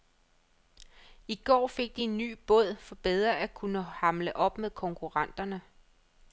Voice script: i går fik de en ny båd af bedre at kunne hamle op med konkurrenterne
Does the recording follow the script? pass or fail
fail